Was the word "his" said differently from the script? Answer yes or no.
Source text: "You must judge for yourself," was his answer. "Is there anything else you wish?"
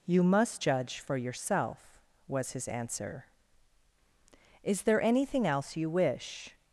no